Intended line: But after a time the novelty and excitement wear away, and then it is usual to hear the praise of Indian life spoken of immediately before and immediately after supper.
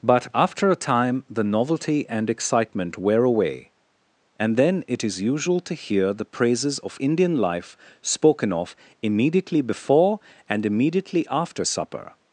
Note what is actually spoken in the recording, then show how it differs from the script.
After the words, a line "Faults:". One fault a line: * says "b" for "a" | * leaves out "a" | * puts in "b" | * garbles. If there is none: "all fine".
But after a time the novelty and excitement wear away, and then it is usual to hear the praises of Indian life spoken of immediately before and immediately after supper.
Faults:
* says "praises" for "praise"